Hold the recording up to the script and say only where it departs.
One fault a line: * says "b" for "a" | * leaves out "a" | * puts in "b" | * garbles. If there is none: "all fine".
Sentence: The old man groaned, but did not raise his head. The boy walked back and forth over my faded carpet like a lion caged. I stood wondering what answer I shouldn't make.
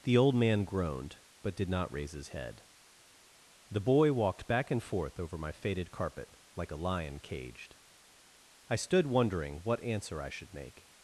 * says "should" for "shouldn't"